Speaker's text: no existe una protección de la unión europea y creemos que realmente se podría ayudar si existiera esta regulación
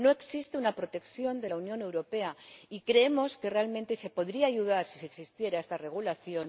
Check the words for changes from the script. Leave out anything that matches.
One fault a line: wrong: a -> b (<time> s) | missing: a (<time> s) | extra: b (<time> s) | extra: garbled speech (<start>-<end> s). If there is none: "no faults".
no faults